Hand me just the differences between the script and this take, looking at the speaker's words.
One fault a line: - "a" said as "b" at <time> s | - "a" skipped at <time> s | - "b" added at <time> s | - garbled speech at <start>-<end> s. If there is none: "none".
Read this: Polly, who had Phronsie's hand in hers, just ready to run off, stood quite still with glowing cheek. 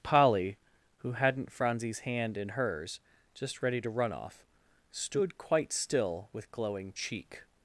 - "had" said as "hadn't" at 1.1 s